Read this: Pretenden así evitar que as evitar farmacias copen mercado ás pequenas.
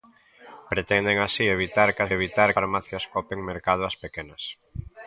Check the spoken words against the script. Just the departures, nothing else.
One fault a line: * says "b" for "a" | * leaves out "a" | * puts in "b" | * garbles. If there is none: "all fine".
all fine